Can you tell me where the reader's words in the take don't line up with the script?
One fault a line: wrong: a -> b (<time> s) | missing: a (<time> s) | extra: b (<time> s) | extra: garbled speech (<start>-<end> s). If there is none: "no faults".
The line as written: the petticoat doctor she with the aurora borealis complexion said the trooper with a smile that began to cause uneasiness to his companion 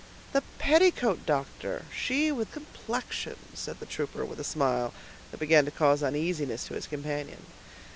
missing: the aurora borealis (2.5 s)